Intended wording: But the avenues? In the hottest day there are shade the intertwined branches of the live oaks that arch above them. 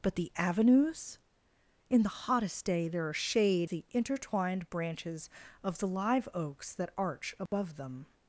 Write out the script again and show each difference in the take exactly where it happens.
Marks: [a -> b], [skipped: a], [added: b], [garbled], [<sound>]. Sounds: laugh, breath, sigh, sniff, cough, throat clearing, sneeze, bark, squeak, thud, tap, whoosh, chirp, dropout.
But the avenues? In the hottest day there are shade the intertwined branches of the live oaks that arch above [dropout] them.